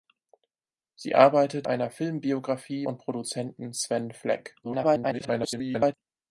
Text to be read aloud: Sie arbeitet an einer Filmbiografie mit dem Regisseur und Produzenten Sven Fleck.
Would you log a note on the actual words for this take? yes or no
yes